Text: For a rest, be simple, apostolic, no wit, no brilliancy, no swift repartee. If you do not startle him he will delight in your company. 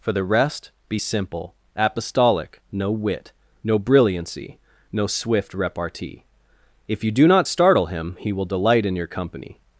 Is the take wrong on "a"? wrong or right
wrong